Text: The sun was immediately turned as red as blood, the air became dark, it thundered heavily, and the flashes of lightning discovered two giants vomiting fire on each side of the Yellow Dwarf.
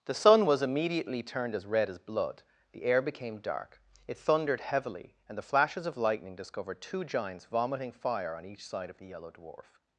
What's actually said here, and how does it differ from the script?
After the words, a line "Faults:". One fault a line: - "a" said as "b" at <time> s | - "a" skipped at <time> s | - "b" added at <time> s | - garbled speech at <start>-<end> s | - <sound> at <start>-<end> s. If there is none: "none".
The sun was immediately turned as red as blood, the air became dark, it thundered heavily, and the flashes of lightning discovered two giants vomiting fire on each side of the Yellow Dwarf.
Faults:
none